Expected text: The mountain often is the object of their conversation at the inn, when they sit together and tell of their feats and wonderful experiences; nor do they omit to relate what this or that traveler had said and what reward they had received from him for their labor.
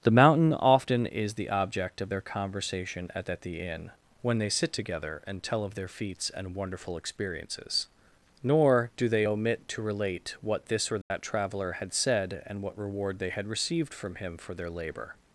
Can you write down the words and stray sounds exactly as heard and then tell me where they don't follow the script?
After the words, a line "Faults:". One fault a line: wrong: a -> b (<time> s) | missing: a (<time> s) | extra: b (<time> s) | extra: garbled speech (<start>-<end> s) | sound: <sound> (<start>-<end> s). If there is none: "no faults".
The mountain often is the object of their conversation at at the inn, when they sit together and tell of their feats and wonderful experiences; nor do they omit to relate what this or that traveler had said and what reward they had received from him for their labor.
Faults:
extra: at (3.3 s)
sound: dropout (11.0-11.1 s)